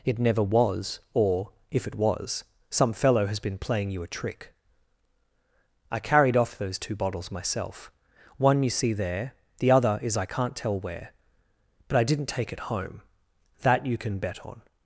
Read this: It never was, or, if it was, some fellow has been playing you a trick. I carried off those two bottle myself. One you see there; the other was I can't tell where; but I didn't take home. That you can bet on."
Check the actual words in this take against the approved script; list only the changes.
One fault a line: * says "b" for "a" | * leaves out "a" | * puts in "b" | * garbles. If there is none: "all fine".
* says "bottles" for "bottle"
* says "is" for "was"
* puts in "it"